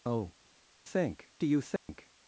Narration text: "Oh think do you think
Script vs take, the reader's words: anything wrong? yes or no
no